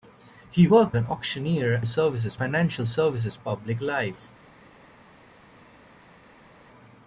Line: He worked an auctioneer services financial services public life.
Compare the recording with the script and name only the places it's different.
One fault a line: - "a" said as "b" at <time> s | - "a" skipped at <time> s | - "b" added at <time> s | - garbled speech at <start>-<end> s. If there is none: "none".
none